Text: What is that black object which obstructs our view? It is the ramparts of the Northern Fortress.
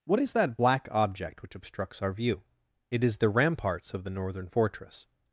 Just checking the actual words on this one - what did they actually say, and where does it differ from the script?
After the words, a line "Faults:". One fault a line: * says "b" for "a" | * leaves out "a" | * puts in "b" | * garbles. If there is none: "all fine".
What is that black object which obstructs our view? It is the ramparts of the Northern Fortress.
Faults:
all fine